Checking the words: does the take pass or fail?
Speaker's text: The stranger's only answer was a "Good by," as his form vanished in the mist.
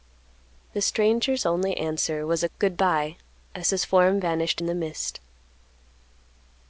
pass